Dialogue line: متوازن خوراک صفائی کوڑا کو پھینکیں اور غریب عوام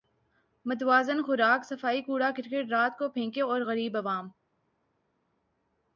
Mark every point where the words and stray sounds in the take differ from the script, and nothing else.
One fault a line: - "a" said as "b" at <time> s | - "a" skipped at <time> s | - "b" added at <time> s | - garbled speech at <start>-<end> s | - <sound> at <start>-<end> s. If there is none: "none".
- "کرکٹ رات" added at 2.4 s